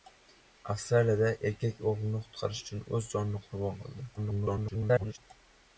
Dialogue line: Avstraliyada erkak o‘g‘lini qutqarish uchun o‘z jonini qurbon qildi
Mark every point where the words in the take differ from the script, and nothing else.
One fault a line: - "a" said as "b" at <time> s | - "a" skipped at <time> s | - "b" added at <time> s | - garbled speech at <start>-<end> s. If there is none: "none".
- garbled speech at 4.2-5.2 s